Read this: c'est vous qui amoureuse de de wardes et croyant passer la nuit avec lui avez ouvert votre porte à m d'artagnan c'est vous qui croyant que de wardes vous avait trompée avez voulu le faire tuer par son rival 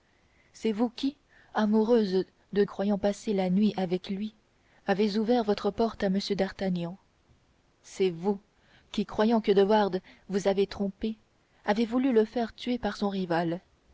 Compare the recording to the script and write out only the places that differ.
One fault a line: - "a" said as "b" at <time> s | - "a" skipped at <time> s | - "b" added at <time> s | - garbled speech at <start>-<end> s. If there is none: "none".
- "de wardes et" skipped at 2.6 s